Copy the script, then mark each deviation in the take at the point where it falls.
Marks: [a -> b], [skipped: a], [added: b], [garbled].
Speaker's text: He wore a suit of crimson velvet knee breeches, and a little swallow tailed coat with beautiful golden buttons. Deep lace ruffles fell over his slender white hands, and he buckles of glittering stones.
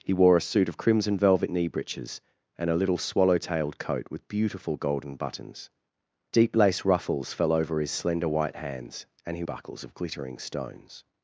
He wore a suit of crimson velvet knee breeches, and a little swallow tailed coat with beautiful golden buttons. Deep lace ruffles fell over his slender white hands, and he buckles of glittering stones.